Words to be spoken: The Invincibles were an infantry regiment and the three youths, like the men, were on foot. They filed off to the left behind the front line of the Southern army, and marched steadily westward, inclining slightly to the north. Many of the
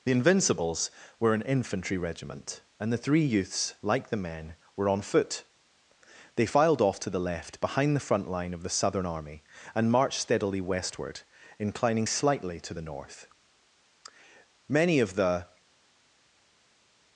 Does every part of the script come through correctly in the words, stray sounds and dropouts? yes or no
yes